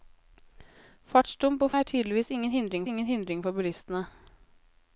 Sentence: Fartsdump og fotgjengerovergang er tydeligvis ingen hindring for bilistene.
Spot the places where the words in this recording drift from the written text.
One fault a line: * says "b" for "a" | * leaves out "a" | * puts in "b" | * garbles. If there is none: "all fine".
* leaves out "fotgjengerovergang"
* puts in "ingen hindring"